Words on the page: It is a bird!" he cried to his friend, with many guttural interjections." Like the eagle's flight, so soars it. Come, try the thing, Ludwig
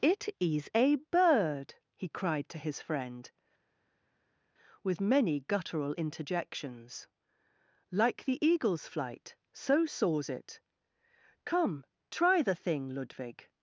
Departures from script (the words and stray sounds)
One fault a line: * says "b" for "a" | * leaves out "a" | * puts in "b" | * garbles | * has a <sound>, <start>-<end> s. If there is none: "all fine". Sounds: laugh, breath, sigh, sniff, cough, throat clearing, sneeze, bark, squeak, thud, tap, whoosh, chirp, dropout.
all fine